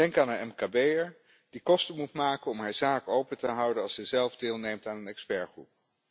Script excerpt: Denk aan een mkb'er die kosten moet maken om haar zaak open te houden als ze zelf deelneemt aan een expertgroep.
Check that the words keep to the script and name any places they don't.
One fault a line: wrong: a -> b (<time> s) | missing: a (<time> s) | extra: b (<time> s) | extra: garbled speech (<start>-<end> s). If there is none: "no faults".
no faults